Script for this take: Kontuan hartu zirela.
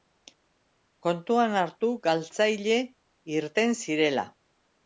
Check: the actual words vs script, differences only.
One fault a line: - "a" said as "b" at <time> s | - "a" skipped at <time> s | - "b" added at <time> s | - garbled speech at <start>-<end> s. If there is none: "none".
- "galtzaile irten" added at 2.1 s